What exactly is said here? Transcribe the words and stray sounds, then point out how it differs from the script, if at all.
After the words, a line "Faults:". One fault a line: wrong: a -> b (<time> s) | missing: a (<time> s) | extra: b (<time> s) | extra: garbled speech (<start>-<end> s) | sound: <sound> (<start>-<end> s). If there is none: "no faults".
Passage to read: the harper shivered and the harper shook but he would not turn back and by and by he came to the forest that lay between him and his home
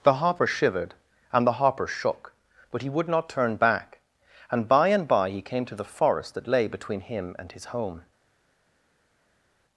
the harper shivered and the harper shook but he would not turn back and by and by he came to the forest that lay between him and his home
Faults:
no faults